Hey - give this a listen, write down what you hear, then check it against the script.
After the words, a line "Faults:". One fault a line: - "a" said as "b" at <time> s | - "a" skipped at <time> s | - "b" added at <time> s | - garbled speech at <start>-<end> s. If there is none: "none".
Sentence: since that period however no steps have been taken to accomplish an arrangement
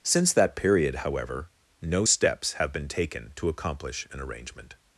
since that period however no steps have been taken to accomplish an arrangement
Faults:
none